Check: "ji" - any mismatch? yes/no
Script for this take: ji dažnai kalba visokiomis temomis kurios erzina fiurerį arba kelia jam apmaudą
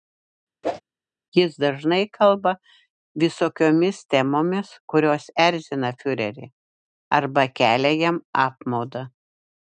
yes